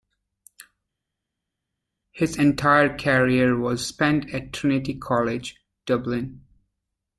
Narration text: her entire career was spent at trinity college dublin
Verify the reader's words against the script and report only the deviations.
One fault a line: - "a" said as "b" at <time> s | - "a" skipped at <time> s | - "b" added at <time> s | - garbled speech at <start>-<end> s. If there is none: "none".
- "her" said as "his" at 2.1 s